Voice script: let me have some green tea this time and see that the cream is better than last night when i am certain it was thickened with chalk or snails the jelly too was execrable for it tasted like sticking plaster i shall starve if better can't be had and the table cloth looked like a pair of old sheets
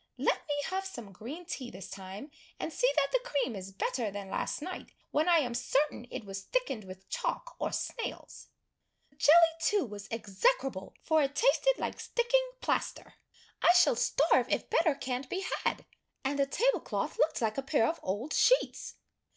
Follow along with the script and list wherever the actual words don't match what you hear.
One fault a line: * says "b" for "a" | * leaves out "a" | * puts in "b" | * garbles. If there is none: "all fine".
* leaves out "the"